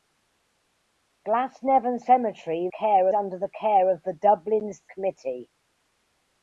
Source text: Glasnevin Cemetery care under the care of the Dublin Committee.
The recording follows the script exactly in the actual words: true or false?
true